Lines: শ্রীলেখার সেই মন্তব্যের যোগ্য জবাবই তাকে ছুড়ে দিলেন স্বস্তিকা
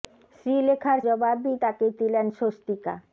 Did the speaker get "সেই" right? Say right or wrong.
wrong